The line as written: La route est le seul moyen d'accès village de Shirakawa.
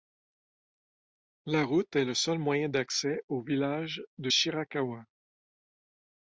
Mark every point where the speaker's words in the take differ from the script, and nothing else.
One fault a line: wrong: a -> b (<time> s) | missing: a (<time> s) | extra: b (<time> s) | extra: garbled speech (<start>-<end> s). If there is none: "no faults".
extra: au (3.3 s)